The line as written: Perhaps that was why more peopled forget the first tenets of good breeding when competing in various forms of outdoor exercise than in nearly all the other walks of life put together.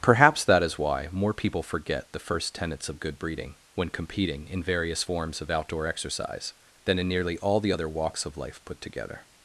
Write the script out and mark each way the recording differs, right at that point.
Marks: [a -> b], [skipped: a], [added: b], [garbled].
Perhaps that [was -> is] why more [peopled -> people] forget the first tenets of good breeding when competing in various forms of outdoor exercise than in nearly all the other walks of life put together.